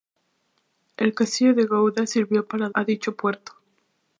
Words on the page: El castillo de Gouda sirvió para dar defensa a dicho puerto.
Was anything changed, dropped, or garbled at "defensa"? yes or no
yes